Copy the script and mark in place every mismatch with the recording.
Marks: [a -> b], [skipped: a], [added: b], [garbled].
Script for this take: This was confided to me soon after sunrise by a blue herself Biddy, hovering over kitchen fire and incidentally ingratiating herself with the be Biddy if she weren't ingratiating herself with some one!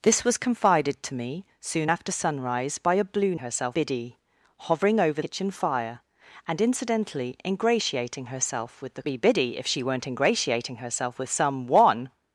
This was confided to me soon after sunrise by a blue herself Biddy, hovering over kitchen fire and incidentally ingratiating herself with the be Biddy if she weren't ingratiating herself with some one!